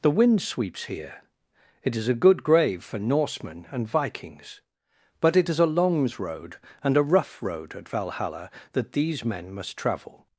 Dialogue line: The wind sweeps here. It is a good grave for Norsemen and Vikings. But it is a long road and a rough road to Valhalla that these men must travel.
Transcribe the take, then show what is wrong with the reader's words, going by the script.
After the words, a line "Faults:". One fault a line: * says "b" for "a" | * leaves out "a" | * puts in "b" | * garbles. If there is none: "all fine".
The wind sweeps here. It is a good grave for Norsemen and Vikings. But it is a longs road and a rough road at Valhalla that these men must travel.
Faults:
* says "longs" for "long"
* says "at" for "to"